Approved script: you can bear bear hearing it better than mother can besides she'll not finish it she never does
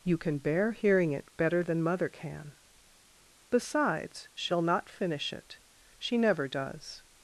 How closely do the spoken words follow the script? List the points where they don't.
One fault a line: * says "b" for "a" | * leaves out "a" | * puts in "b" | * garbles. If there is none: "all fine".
* leaves out "bear"